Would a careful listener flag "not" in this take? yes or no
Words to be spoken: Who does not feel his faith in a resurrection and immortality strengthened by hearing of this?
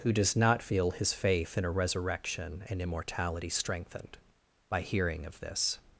no